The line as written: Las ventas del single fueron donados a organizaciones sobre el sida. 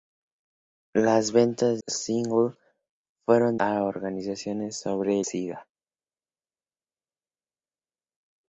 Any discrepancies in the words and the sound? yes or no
yes